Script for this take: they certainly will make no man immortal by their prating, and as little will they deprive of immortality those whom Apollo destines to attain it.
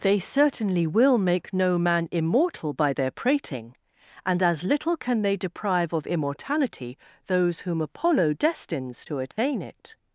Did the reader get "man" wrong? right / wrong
right